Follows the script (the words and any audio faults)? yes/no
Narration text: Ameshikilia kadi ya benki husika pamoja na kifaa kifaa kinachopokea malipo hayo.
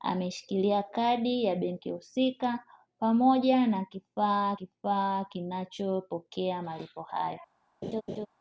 no